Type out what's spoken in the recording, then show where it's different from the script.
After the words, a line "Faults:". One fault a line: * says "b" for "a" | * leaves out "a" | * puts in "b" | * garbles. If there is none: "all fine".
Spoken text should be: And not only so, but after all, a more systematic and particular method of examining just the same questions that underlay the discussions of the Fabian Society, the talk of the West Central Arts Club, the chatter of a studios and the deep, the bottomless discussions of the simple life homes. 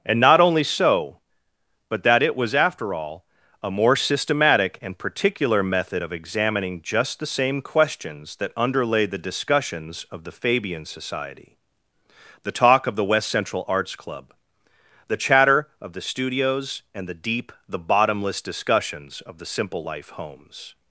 And not only so, but that it was after all, a more systematic and particular method of examining just the same questions that underlay the discussions of the Fabian Society, the talk of the West Central Arts Club, the chatter of the studios and the deep, the bottomless discussions of the simple life homes.
Faults:
* puts in "that it was"
* says "the" for "a"